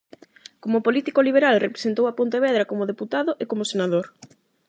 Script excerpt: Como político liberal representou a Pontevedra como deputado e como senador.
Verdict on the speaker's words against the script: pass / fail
pass